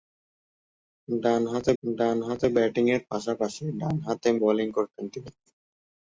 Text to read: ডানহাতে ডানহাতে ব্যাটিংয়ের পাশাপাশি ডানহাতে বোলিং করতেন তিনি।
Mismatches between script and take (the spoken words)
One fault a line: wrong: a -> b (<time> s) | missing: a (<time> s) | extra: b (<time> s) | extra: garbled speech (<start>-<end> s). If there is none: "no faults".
no faults